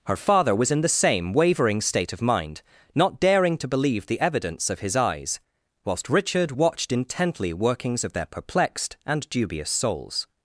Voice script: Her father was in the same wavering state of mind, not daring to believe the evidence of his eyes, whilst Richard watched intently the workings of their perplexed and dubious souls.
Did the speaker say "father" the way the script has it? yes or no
yes